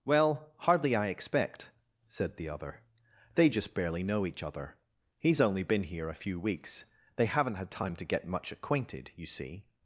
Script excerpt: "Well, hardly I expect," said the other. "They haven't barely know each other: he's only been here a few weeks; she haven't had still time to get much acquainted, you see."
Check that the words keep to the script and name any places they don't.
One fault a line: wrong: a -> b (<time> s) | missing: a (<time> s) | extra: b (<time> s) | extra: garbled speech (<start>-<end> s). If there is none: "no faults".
wrong: haven't -> just (3.5 s)
wrong: she -> they (7.2 s)
missing: still (7.7 s)